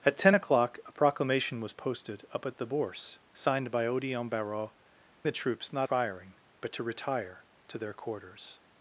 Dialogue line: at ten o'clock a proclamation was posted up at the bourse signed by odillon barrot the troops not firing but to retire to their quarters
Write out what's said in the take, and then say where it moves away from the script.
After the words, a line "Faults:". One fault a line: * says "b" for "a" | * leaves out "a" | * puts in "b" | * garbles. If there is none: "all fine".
at ten o'clock a proclamation was posted up at the bourse signed by odillon barrot the troops not firing but to retire to their quarters
Faults:
all fine